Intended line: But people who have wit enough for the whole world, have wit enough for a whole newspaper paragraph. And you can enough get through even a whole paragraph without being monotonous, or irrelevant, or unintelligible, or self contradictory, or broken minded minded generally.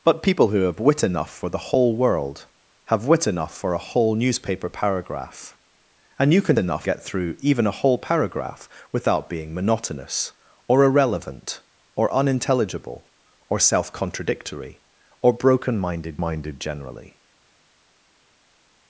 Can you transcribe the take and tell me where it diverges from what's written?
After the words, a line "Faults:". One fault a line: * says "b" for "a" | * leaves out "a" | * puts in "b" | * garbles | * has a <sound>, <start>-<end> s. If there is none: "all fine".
But people who have wit enough for the whole world, have wit enough for a whole newspaper paragraph. And you can enough get through even a whole paragraph without being monotonous, or irrelevant, or unintelligible, or self contradictory, or broken minded minded generally.
Faults:
all fine